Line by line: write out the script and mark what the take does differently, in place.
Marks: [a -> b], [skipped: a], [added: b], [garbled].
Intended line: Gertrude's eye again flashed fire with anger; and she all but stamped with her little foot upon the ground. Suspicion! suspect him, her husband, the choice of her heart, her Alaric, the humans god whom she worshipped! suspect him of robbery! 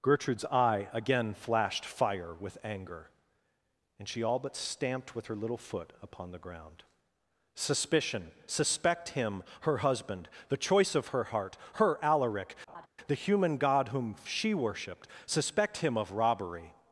Gertrude's eye again flashed fire with anger; and she all but stamped with her little foot upon the ground. Suspicion! suspect him, her husband, the choice of her heart, her Alaric, the [humans -> human] god whom she worshipped! suspect him of robbery!